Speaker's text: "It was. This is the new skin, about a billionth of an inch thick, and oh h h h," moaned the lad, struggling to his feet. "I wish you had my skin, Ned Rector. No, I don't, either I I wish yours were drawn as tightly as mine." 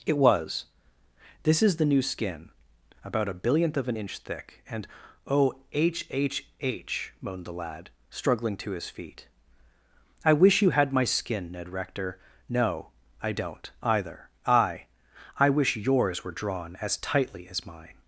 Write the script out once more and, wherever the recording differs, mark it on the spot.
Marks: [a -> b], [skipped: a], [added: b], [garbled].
"It was. This is the new skin, about a billionth of an inch thick, and oh h h h," moaned the lad, struggling to his feet. "I wish you had my skin, Ned Rector. No, I don't, either I I wish yours were drawn as tightly as mine."